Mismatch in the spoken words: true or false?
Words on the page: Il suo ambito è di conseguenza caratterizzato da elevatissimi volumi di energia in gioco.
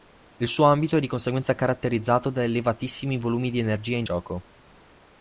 false